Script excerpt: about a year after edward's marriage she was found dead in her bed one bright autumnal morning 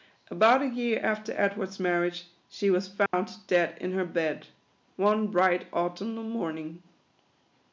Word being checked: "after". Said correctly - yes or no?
yes